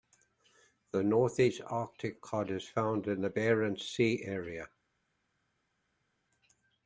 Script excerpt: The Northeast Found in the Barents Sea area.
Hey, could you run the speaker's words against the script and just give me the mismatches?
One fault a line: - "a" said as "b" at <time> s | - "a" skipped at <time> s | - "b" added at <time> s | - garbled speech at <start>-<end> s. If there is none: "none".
- "Arctic cod is" added at 1.7 s